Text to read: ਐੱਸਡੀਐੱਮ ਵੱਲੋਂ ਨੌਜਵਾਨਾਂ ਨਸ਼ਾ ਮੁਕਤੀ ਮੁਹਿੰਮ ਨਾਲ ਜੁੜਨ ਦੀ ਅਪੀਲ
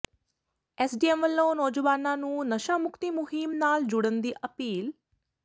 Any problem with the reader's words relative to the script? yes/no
yes